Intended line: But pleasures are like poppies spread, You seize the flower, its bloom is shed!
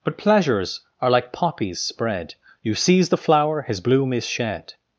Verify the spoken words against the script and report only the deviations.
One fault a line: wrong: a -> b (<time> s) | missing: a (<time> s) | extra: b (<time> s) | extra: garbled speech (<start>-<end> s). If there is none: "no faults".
wrong: its -> his (3.6 s)